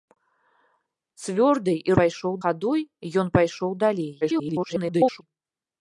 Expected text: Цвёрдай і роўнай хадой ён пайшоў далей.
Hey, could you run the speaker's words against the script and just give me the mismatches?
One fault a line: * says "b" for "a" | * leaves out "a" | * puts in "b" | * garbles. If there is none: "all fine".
* says "пайшоў" for "роўнай"
* garbles